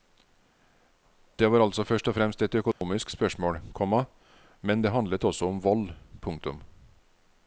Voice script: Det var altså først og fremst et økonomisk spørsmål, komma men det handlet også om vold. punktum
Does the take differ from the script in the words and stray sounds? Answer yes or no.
yes